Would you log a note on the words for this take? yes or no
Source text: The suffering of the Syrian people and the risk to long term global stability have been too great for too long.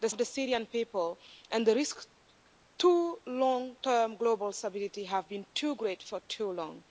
yes